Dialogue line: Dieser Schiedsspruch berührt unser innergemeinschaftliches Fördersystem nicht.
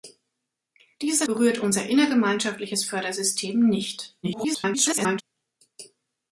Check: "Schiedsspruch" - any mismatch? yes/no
yes